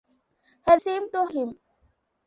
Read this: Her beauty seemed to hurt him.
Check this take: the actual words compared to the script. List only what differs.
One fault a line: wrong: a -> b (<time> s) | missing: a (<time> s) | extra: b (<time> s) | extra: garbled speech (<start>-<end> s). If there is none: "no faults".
missing: beauty (0.8 s)
missing: hurt (1.2 s)